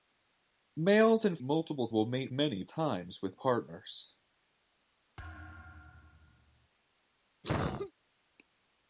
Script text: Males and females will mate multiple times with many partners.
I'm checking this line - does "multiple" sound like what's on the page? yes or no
no